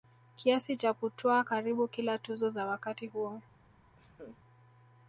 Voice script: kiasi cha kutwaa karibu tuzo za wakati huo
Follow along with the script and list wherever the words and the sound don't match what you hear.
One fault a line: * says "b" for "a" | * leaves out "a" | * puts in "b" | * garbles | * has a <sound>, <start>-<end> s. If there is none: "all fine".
* puts in "kila"
* has a laugh, 4.0-4.4 s